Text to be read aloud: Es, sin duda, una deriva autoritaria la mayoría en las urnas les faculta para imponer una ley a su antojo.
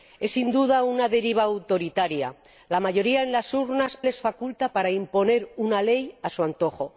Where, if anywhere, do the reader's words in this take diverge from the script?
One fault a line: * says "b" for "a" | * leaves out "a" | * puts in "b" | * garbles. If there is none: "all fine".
all fine